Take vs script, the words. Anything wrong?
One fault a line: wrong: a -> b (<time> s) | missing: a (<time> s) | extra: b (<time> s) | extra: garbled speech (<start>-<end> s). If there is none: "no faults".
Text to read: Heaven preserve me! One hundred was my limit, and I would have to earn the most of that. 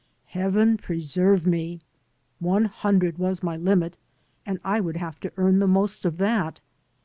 no faults